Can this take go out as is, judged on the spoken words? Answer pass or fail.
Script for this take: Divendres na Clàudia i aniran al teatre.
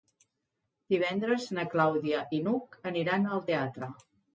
fail